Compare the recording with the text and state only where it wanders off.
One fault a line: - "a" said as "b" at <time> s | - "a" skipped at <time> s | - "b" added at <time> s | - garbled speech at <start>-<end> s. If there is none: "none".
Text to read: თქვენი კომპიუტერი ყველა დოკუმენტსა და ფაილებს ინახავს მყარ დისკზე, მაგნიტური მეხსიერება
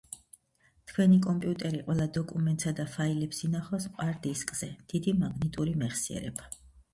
- "დიდი" added at 5.0 s